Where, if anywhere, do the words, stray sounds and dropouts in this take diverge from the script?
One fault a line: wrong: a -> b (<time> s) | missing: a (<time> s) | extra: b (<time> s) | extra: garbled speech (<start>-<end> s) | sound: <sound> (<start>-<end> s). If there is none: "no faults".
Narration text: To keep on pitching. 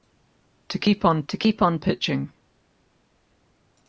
extra: to keep on (1.3 s)